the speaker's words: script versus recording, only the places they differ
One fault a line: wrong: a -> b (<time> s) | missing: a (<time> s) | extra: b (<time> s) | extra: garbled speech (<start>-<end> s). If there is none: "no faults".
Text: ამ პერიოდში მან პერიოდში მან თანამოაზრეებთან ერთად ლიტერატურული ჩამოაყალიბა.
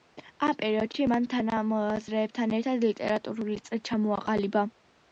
missing: პერიოდში მან (1.3 s)
extra: წრე (3.7 s)